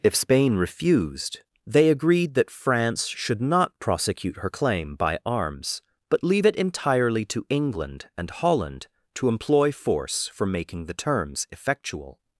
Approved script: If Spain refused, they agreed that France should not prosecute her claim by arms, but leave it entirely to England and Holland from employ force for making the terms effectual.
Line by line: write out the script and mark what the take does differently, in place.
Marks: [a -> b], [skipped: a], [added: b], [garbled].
If Spain refused, they agreed that France should not prosecute her claim by arms, but leave it entirely to England and Holland [from -> to] employ force for making the terms effectual.